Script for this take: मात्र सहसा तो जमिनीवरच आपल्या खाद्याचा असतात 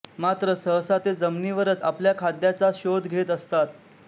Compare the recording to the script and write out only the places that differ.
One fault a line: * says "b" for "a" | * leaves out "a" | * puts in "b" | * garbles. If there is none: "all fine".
* says "ते" for "तो"
* puts in "शोध घेत"